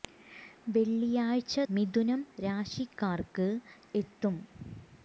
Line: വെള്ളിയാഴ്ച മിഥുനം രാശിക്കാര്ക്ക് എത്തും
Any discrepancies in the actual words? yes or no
no